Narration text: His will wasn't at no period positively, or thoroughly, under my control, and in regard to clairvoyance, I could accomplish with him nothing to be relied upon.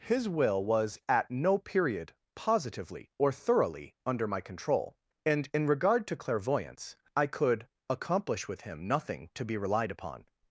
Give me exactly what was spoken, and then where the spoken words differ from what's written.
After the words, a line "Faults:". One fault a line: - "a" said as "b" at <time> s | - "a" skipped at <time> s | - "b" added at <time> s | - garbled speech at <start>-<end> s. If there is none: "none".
His will was at no period positively, or thoroughly, under my control, and in regard to clairvoyance, I could accomplish with him nothing to be relied upon.
Faults:
- "wasn't" said as "was" at 0.7 s